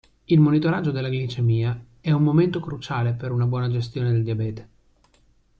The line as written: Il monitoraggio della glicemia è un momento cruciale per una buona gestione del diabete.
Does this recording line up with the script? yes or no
yes